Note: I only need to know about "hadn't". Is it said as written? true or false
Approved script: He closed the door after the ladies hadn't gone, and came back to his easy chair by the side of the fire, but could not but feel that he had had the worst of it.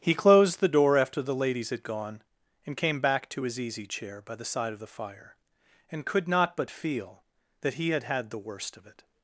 false